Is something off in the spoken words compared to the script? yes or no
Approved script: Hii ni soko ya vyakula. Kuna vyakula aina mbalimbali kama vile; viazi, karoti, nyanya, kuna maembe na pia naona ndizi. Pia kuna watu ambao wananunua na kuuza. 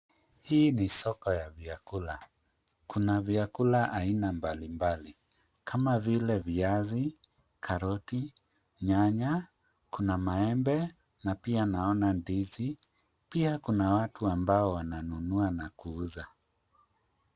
no